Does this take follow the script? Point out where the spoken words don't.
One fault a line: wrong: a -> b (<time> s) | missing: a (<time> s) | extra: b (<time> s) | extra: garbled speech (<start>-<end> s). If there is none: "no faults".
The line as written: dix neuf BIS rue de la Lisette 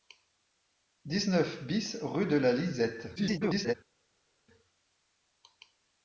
extra: garbled speech (3.2-3.7 s)